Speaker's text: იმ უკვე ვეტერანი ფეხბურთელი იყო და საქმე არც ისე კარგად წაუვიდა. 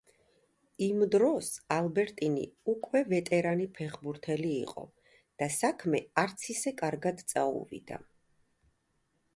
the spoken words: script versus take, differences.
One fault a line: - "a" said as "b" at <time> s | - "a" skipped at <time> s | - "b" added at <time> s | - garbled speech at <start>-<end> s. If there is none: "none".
- "დროს ალბერტინი" added at 1.1 s